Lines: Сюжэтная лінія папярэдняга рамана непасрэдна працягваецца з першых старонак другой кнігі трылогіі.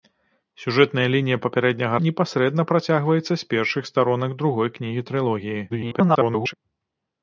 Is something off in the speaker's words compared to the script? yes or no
yes